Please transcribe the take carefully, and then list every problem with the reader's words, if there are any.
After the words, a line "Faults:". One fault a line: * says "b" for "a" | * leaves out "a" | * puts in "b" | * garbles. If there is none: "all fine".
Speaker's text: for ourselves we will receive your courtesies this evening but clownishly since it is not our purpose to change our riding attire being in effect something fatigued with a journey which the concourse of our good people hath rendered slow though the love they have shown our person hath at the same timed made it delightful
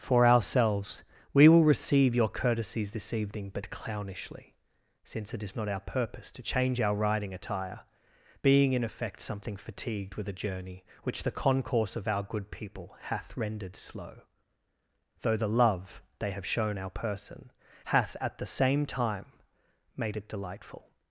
for ourselves we will receive your courtesies this evening but clownishly since it is not our purpose to change our riding attire being in effect something fatigued with a journey which the concourse of our good people hath rendered slow though the love they have shown our person hath at the same time made it delightful
Faults:
* says "time" for "timed"